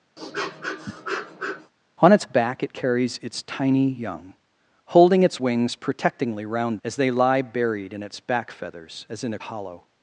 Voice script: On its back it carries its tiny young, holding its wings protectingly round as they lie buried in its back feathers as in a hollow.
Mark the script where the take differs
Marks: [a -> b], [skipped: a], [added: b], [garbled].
On its back it carries its tiny young, holding its wings protectingly round as they lie buried in its back feathers as in a hollow.